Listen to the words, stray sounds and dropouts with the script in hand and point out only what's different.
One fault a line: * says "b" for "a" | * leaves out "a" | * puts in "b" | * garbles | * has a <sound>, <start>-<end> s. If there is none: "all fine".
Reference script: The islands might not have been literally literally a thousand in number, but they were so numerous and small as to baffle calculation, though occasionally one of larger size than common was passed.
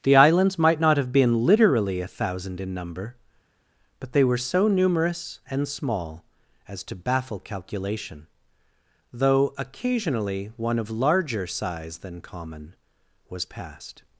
* leaves out "literally"